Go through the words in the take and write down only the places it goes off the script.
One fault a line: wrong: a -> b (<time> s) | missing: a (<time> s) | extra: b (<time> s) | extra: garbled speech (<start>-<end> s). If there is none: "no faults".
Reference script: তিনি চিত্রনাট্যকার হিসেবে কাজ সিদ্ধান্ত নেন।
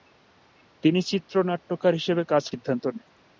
no faults